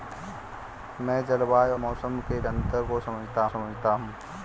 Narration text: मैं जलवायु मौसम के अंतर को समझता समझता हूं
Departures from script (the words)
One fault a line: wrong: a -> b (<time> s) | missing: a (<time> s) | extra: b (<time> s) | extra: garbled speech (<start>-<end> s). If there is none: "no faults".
no faults